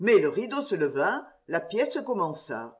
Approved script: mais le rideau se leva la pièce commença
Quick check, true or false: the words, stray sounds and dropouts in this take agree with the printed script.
true